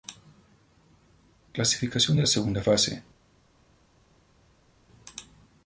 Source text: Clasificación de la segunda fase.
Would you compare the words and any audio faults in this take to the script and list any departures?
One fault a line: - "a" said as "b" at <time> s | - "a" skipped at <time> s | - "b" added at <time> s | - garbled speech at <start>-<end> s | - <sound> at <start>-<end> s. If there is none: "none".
none